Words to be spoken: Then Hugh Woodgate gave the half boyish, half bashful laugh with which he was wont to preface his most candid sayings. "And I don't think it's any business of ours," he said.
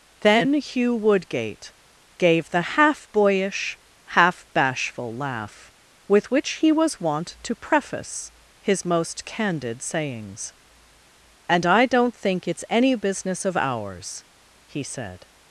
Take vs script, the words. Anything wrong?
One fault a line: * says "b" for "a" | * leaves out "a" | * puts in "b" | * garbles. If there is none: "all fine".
all fine